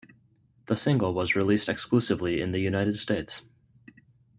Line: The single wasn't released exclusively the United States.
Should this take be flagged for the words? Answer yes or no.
yes